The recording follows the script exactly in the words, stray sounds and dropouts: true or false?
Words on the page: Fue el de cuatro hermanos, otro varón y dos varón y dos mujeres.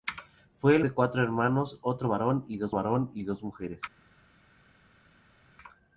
true